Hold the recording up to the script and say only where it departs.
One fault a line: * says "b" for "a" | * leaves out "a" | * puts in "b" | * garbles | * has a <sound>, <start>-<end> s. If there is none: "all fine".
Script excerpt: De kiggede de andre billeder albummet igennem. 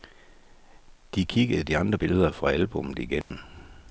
* puts in "fra"
* has a dropout, 3.2-3.3 s